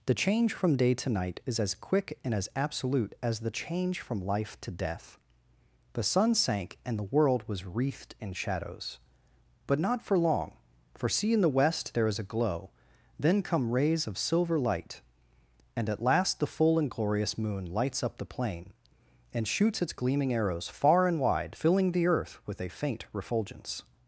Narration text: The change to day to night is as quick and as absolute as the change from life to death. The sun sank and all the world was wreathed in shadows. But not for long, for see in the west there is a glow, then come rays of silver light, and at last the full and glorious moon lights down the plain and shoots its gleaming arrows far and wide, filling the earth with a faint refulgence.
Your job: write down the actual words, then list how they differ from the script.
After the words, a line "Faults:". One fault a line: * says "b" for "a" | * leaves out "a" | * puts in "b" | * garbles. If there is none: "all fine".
The change from day to night is as quick and as absolute as the change from life to death. The sun sank and the world was wreathed in shadows. But not for long, for see in the west there is a glow, then come rays of silver light, and at last the full and glorious moon lights up the plain and shoots its gleaming arrows far and wide, filling the earth with a faint refulgence.
Faults:
* says "from" for "to"
* leaves out "all"
* says "up" for "down"